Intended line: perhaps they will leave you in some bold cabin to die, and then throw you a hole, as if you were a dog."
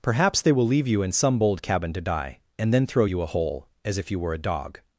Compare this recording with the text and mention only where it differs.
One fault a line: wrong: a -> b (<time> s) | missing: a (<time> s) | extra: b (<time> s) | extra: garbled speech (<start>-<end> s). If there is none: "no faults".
no faults